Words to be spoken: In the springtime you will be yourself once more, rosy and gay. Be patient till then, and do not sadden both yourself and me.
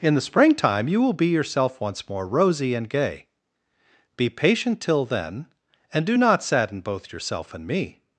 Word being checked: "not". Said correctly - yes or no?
yes